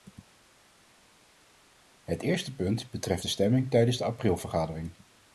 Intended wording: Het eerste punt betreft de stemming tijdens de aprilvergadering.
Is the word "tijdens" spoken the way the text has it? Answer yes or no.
yes